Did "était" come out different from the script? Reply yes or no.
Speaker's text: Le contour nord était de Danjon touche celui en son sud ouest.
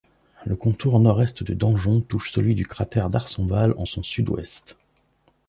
yes